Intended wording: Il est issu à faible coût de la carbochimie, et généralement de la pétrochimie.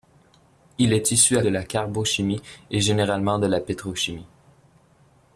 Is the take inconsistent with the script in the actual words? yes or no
yes